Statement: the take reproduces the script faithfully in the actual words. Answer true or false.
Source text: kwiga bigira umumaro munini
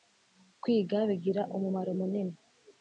true